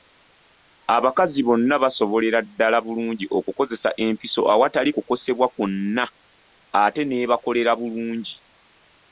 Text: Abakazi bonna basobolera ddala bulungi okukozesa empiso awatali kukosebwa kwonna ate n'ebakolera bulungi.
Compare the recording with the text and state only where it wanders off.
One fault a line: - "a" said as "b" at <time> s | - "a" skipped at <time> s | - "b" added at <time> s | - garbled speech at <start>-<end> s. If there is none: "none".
none